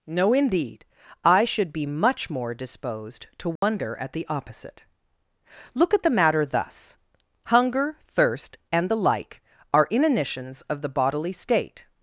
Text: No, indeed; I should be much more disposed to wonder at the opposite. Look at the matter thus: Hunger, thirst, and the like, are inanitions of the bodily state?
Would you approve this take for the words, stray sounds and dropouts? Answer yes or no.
no